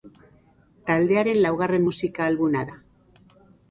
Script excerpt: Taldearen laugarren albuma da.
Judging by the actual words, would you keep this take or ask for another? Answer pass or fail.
fail